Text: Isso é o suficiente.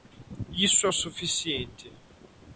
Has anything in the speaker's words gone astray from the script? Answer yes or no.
no